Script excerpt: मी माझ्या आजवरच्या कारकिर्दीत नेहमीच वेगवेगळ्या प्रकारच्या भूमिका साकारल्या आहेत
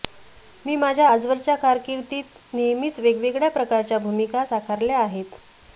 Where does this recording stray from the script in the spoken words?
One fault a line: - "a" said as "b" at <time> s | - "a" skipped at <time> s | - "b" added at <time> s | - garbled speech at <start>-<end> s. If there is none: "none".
none